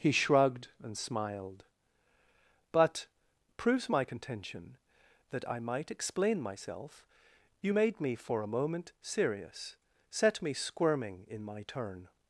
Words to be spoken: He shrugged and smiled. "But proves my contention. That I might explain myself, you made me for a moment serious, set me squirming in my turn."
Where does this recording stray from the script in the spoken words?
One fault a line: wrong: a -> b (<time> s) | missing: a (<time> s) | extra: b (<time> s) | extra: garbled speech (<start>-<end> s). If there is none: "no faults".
no faults